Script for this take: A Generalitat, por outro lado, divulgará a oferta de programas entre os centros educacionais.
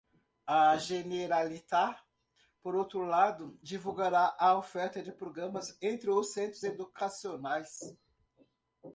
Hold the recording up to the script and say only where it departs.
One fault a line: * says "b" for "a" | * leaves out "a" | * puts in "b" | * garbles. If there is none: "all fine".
all fine